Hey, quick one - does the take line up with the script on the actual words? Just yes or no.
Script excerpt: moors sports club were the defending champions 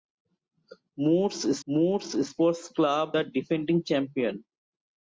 no